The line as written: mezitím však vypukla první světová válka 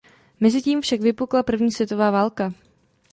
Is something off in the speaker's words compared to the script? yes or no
no